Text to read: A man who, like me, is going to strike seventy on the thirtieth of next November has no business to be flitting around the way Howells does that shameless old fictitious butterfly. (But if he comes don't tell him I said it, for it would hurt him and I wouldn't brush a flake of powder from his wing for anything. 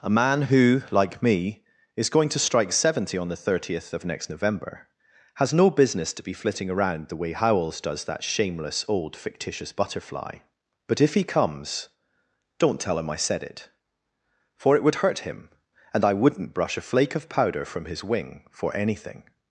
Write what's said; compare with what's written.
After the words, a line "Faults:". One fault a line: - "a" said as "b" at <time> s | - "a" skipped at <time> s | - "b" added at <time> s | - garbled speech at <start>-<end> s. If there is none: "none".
A man who, like me, is going to strike seventy on the thirtieth of next November has no business to be flitting around the way Howells does that shameless old fictitious butterfly. (But if he comes don't tell him I said it, for it would hurt him and I wouldn't brush a flake of powder from his wing for anything.
Faults:
none